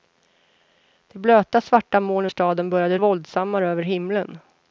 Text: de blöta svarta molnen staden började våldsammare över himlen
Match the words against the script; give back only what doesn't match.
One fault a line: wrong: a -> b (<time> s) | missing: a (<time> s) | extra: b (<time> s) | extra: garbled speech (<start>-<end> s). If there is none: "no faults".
no faults